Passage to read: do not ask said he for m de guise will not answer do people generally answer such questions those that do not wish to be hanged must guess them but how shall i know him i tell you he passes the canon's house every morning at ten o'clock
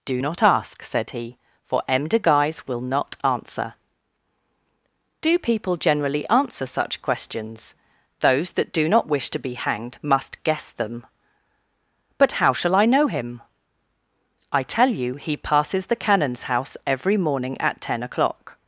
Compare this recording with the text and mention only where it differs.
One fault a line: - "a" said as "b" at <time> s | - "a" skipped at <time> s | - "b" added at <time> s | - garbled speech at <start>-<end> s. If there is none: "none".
none